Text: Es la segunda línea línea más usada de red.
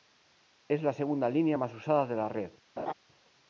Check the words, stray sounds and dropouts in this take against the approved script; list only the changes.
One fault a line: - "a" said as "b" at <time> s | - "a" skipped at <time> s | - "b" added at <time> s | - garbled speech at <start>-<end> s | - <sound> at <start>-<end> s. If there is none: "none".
- "línea" skipped at 1.6 s
- "la" added at 2.2 s
- laugh at 2.8-2.9 s